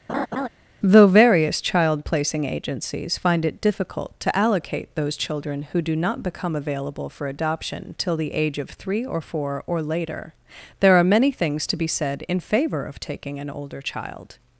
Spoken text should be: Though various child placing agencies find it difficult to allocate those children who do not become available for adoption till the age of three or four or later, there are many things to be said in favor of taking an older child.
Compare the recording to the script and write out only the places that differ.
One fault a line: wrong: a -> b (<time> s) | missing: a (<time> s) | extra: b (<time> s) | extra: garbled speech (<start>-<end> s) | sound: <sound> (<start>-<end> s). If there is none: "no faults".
sound: laugh (0.1-0.5 s)